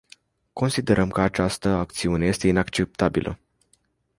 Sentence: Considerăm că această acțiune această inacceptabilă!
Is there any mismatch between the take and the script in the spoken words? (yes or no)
yes